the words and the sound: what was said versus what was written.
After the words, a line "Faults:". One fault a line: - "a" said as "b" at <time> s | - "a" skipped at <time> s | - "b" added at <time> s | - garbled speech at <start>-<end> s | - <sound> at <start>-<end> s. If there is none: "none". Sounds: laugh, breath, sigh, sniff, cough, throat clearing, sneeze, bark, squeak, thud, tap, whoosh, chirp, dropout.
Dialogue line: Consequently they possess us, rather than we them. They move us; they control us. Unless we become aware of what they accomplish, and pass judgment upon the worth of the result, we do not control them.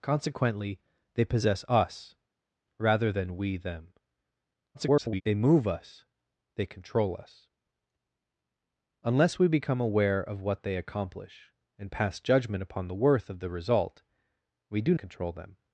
Consequently they possess us, rather than we them. [garbled] They move us; they control us. Unless we become aware of what they accomplish, and pass judgment upon the worth of the result, we do control them.
Faults:
- garbled speech at 4.7-5.2 s
- "not" skipped at 14.9 s